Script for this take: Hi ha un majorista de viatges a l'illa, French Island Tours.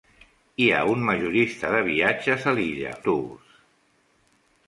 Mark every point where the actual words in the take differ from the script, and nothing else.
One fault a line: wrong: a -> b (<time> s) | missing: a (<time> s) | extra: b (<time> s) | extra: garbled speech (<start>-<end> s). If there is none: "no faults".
missing: French Island (3.0 s)